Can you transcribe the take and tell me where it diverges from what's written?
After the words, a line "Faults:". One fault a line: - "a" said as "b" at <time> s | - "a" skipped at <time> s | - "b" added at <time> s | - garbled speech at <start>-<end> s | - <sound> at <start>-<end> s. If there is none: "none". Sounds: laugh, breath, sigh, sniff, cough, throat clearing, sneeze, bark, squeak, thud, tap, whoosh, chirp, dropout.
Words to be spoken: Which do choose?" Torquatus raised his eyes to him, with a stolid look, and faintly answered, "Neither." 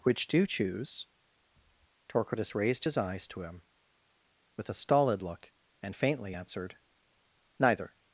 Which do choose?" Torquatus raised his eyes to him, with a stolid look, and faintly answered, "Neither."
Faults:
none